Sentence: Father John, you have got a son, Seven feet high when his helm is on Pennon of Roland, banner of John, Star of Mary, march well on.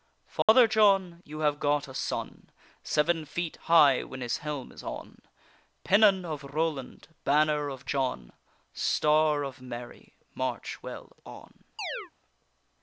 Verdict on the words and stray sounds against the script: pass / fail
fail